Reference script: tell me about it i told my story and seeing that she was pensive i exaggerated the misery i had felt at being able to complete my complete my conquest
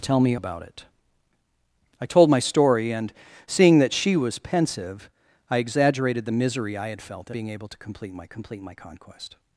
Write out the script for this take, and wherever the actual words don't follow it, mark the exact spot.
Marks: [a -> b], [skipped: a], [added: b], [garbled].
tell me about it i told my story and seeing that she was pensive i exaggerated the misery i had felt at being able to complete my complete my conquest